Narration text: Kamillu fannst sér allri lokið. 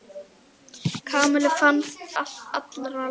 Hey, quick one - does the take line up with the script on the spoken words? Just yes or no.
no